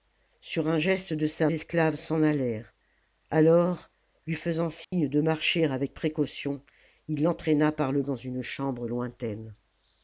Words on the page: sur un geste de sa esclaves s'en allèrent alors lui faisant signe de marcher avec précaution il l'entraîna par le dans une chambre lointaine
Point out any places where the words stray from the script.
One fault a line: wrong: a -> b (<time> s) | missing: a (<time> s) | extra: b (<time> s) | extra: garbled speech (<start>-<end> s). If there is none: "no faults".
no faults